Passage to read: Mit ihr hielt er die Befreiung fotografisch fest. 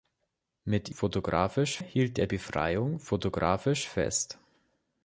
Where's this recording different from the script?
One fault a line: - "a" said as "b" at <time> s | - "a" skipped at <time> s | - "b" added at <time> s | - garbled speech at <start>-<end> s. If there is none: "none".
- "ihr" said as "fotografisch" at 0.9 s
- "die" skipped at 2.3 s